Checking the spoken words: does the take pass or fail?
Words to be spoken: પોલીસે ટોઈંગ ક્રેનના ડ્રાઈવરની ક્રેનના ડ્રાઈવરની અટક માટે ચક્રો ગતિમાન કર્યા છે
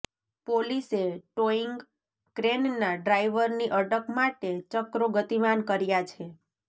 fail